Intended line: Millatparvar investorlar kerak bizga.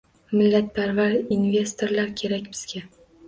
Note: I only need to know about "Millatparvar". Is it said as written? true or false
true